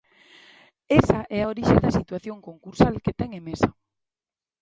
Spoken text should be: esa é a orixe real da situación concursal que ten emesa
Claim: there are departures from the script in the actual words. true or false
true